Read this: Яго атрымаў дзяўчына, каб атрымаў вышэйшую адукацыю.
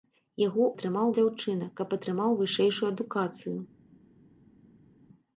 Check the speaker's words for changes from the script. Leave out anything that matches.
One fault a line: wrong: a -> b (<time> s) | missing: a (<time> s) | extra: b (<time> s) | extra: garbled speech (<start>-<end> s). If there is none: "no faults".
no faults